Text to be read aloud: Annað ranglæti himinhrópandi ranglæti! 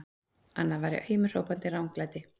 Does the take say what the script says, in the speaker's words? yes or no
no